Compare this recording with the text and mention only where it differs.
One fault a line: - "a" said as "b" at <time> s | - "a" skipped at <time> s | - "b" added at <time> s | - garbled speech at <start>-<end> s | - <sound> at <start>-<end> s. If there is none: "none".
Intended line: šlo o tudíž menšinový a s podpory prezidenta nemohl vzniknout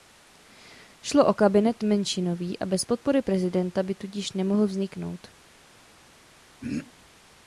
- "tudíž" said as "kabinet" at 1.3 s
- "s" said as "bez" at 2.7 s
- "by tudíž" added at 3.8 s
- throat clearing at 6.6-6.9 s